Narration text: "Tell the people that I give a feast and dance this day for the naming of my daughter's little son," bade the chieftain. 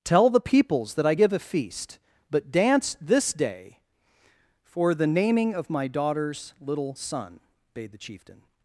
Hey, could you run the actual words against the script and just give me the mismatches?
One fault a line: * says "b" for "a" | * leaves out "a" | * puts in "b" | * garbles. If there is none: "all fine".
* says "peoples" for "people"
* says "but" for "and"